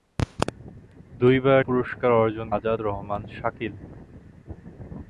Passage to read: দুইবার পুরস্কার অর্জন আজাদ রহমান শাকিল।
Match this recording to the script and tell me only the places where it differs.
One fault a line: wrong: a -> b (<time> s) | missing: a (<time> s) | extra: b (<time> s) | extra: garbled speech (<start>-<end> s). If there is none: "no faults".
no faults